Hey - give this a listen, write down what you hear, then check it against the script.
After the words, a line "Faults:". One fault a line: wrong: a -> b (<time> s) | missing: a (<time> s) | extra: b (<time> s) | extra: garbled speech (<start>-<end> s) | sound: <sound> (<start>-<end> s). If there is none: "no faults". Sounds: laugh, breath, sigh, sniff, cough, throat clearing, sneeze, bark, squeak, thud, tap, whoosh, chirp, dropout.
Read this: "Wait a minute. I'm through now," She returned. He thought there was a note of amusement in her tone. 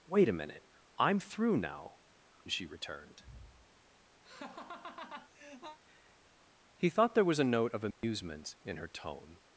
"Wait a minute. I'm through now," She returned. He thought there was a note of amusement in her tone.
Faults:
sound: laugh (4.2-5.8 s)
sound: dropout (7.9-8.0 s)